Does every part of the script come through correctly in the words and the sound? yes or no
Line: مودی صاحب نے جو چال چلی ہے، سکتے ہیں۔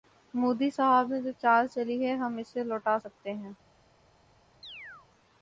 no